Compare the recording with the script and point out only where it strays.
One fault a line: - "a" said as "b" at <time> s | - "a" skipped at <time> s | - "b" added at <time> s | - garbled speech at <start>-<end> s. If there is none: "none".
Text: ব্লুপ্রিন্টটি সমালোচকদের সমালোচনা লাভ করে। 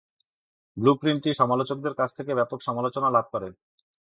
- "কাছ থেকে ব্যাপক" added at 1.9 s